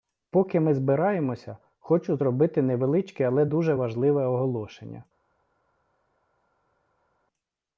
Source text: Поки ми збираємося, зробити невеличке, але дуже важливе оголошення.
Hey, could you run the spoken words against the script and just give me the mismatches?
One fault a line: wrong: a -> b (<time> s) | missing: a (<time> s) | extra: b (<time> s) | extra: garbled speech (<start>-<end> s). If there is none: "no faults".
extra: хочу (1.8 s)